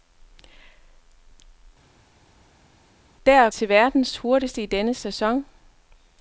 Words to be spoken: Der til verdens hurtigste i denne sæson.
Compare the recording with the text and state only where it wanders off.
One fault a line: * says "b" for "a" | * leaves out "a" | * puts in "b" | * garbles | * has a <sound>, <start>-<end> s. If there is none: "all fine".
all fine